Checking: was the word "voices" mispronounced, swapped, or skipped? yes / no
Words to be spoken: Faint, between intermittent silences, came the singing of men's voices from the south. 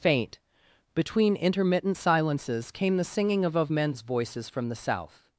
no